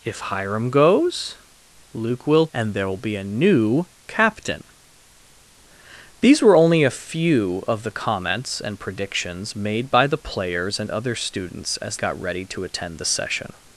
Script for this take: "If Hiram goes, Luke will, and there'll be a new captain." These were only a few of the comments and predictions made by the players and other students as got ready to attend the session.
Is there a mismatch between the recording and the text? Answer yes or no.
no